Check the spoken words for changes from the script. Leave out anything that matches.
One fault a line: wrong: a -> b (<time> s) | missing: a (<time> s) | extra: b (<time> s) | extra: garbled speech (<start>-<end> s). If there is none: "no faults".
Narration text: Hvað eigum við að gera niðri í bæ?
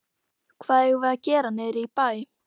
no faults